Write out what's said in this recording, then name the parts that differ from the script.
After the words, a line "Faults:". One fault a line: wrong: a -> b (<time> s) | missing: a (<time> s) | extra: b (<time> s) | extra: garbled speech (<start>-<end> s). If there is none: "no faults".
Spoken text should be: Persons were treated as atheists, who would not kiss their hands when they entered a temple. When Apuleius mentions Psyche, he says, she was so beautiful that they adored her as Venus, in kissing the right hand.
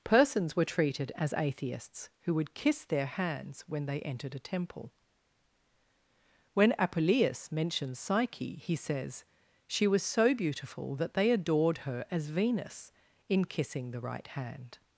Persons were treated as atheists, who would kiss their hands when they entered a temple. When Apuleius mentions Psyche, he says, she was so beautiful that they adored her as Venus, in kissing the right hand.
Faults:
missing: not (2.5 s)